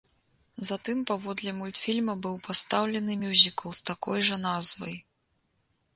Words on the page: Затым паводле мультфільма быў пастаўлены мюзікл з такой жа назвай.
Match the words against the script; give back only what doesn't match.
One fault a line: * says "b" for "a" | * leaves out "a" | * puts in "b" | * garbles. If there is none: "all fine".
all fine